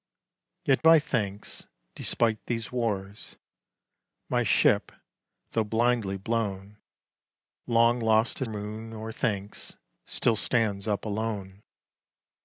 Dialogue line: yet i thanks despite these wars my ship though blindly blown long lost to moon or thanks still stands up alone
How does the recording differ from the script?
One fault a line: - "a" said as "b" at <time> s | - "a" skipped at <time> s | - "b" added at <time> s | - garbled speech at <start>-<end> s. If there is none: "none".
none